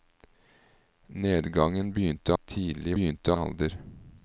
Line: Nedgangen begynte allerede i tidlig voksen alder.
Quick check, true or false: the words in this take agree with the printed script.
false